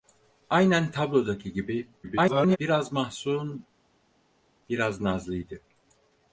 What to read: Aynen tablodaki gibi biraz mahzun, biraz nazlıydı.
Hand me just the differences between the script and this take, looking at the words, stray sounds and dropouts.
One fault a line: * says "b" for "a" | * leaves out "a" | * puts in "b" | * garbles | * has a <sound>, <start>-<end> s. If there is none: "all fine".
* garbles